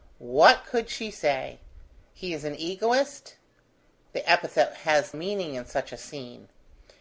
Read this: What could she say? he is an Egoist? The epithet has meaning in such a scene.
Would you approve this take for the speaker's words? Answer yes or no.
yes